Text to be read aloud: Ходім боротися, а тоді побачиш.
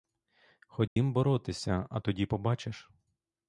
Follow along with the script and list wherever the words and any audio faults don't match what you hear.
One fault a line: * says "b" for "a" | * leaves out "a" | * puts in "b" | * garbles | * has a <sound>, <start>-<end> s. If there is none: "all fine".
* has a dropout, 0.9-1.0 s